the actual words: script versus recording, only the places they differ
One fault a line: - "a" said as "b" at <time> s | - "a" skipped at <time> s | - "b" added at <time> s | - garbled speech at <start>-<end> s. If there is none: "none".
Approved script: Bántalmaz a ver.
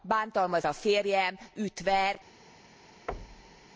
- "férjem üt" added at 0.7 s